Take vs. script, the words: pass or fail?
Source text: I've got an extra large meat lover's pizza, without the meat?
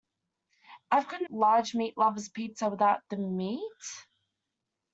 fail